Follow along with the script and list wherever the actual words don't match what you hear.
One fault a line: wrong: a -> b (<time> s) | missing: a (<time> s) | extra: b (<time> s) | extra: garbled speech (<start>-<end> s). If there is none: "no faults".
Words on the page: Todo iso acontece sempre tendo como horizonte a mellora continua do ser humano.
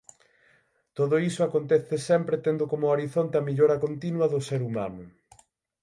no faults